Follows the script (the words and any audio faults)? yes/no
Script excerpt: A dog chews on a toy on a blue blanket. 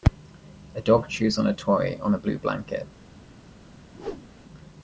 no